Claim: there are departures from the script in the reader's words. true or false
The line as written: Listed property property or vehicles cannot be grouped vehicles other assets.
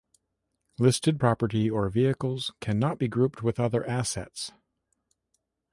true